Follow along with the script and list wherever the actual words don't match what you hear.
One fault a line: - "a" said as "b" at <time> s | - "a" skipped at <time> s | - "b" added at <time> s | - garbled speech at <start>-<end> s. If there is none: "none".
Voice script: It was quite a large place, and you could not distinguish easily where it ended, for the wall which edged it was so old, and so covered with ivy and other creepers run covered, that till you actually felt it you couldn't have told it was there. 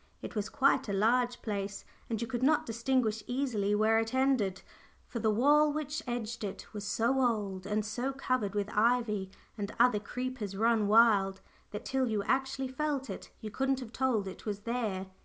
- "covered" said as "wild" at 10.9 s